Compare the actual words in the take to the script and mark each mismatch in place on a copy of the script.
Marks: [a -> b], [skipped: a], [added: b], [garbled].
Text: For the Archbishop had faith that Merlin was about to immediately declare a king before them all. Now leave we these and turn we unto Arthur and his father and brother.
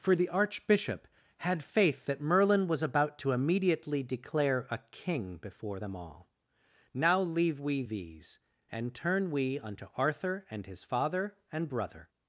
For the Archbishop had faith that Merlin was about to immediately declare a king before them all. Now leave we these and turn we unto Arthur and his father and brother.